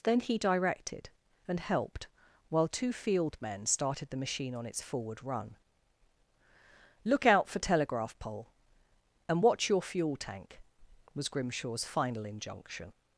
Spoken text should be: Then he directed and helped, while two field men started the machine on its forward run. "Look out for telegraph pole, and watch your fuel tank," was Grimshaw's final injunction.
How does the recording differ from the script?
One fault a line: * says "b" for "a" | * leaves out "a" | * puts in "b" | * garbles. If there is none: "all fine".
all fine